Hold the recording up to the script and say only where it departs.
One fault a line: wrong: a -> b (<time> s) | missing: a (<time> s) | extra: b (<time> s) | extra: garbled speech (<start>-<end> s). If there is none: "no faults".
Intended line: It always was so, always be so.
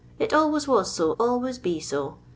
no faults